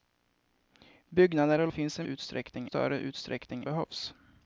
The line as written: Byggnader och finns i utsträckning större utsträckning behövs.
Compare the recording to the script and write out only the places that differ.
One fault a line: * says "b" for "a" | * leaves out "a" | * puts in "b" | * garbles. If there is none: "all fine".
all fine